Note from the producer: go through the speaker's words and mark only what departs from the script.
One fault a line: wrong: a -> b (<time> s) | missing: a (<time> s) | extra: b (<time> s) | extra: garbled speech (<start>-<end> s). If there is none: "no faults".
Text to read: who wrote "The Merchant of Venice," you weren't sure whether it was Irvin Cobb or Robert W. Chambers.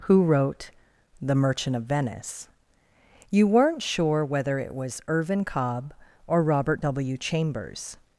no faults